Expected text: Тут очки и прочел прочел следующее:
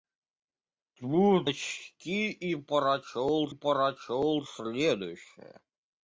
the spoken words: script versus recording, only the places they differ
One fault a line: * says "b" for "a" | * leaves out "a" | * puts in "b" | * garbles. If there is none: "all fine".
all fine